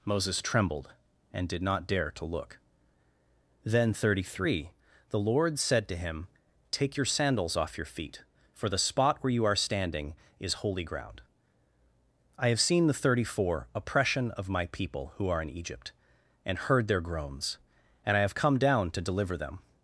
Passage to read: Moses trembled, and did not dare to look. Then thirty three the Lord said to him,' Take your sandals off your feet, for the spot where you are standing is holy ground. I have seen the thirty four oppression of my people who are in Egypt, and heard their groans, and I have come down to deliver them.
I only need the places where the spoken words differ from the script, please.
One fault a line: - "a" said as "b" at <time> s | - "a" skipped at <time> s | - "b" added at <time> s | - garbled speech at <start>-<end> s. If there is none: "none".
none